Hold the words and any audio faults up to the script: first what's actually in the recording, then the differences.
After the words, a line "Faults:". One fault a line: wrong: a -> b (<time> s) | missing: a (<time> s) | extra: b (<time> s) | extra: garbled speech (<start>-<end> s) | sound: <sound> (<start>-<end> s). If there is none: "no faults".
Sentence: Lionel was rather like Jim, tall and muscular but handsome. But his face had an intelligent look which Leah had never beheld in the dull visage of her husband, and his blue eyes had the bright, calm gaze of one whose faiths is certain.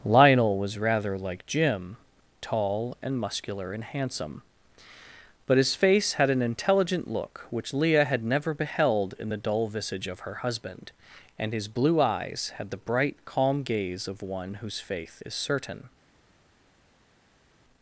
Lionel was rather like Jim, tall and muscular and handsome. But his face had an intelligent look which Leah had never beheld in the dull visage of her husband, and his blue eyes had the bright, calm gaze of one whose faith is certain.
Faults:
wrong: but -> and (3.7 s)
wrong: faiths -> faith (14.8 s)